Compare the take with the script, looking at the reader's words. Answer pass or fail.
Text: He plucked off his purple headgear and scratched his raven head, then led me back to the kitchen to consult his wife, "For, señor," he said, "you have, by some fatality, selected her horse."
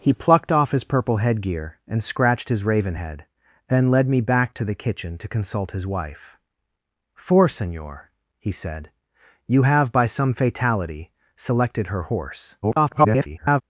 fail